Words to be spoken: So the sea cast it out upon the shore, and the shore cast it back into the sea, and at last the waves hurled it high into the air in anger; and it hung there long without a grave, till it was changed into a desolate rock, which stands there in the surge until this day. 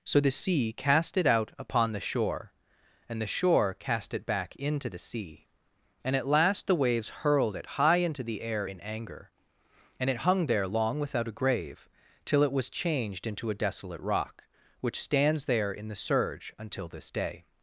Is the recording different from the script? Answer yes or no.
no